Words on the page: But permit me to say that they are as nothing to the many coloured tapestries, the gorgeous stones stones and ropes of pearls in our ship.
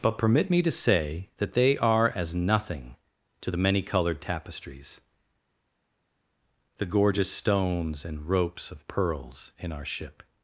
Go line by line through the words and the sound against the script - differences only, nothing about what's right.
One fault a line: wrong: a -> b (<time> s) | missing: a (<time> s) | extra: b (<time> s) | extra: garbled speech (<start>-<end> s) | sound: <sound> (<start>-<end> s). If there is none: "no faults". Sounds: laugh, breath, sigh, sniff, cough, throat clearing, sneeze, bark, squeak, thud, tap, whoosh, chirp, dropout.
missing: stones (8.1 s)